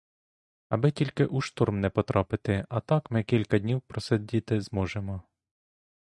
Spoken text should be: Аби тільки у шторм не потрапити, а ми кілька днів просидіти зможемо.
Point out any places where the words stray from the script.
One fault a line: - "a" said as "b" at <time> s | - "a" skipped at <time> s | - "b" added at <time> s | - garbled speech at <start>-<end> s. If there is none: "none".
- "так" added at 2.8 s